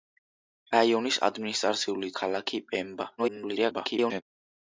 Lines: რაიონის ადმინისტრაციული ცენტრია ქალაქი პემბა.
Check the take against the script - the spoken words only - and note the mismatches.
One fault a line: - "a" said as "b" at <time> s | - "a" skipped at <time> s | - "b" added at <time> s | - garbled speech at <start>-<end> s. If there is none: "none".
- "ცენტრია" skipped at 2.1 s
- garbled speech at 3.2-4.2 s